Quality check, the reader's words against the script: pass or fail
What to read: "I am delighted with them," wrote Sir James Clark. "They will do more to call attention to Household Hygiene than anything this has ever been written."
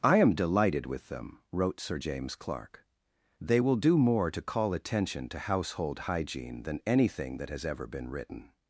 fail